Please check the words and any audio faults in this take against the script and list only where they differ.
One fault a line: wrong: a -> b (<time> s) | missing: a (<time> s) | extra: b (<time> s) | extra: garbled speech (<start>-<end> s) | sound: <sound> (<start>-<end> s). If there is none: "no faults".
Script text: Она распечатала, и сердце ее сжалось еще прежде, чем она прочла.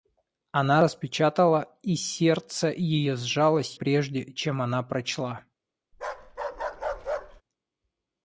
missing: еще (3.8 s)
sound: bark (5.9-7.4 s)